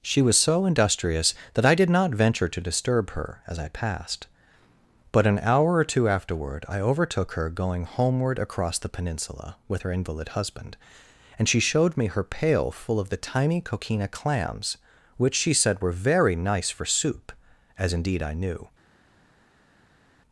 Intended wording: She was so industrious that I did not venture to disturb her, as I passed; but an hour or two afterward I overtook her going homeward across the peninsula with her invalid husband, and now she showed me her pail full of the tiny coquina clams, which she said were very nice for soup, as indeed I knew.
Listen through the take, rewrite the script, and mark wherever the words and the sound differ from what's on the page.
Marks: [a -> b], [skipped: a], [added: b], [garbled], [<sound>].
She was so industrious that I did not venture to disturb her, as I passed; but an hour or two afterward I overtook her going homeward across the peninsula with her invalid husband, and [skipped: now] she showed me her pail full of the tiny coquina clams, which she said were very nice for soup, as indeed I knew.